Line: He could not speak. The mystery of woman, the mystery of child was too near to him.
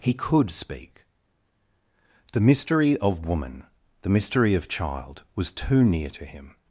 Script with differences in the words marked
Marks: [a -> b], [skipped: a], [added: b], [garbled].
He could [skipped: not] speak. The mystery of woman, the mystery of child was too near to him.